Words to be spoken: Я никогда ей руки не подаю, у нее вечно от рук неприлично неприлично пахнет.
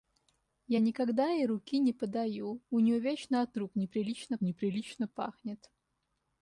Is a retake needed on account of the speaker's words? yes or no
no